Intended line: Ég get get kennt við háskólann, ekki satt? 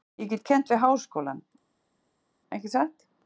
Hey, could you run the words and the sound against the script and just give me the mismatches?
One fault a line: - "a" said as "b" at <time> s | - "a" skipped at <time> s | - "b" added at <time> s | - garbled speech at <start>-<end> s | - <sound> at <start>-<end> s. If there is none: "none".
- "get" skipped at 0.5 s